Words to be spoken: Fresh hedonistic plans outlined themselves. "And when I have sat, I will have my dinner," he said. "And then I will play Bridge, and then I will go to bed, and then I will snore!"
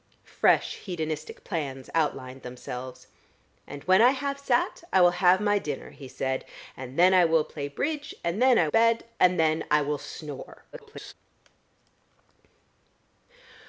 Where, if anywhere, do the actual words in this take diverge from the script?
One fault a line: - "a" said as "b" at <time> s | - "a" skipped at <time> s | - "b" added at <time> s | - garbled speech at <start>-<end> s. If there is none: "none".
- "will go to" skipped at 8.7 s
- garbled speech at 10.7-11.1 s